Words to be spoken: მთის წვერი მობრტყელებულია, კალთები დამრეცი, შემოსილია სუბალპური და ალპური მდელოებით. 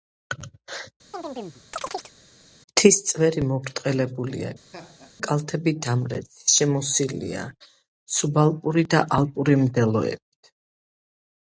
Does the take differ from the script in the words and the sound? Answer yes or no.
yes